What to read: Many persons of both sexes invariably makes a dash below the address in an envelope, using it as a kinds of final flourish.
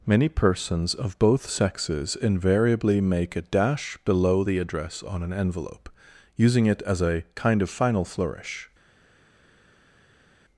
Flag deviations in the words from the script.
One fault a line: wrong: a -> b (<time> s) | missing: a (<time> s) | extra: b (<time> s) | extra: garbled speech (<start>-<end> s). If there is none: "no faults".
wrong: makes -> make (3.0 s)
wrong: in -> on (5.0 s)
wrong: kinds -> kind (7.3 s)